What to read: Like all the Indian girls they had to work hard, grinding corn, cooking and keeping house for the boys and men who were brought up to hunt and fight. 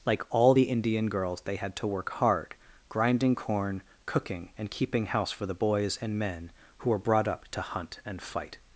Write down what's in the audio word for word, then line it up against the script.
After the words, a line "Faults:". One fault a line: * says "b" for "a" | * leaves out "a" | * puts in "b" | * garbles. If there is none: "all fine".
Like all the Indian girls they had to work hard, grinding corn, cooking and keeping house for the boys and men who were brought up to hunt and fight.
Faults:
all fine